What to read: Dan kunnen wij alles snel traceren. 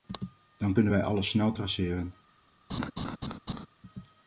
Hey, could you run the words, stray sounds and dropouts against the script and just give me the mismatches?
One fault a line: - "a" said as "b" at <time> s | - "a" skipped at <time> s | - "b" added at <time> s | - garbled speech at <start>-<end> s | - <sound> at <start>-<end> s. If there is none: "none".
- laugh at 2.7-3.7 s